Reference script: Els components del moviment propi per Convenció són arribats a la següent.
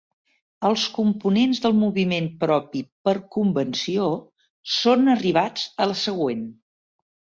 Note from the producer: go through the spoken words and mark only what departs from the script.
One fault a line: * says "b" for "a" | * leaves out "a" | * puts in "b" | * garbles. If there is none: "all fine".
all fine